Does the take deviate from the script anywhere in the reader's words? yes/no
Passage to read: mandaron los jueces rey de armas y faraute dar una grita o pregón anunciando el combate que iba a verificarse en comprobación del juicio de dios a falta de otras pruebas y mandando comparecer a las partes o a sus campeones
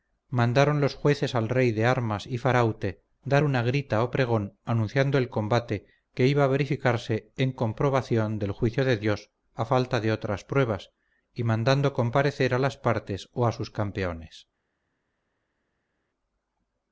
yes